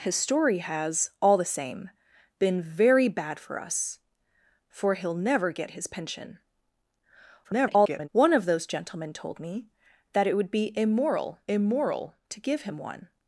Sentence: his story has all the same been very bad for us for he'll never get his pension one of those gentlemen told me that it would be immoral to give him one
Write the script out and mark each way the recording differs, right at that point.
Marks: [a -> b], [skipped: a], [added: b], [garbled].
his story has all the same been very bad for us for he'll never get his pension [garbled] one of those gentlemen told me that it would be immoral [added: immoral] to give him one